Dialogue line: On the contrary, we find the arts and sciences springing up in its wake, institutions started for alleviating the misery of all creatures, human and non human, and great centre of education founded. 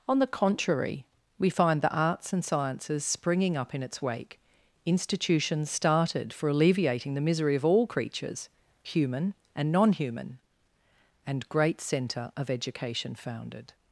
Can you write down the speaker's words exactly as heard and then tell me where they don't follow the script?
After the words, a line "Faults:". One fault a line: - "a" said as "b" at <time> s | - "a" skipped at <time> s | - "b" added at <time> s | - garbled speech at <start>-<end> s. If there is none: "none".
On the contrary, we find the arts and sciences springing up in its wake, institutions started for alleviating the misery of all creatures, human and non human, and great centre of education founded.
Faults:
none